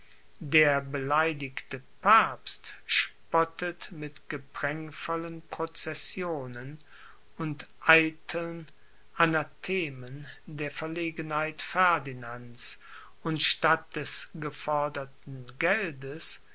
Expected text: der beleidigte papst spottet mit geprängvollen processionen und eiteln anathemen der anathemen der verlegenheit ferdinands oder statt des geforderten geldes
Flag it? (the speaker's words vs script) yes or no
yes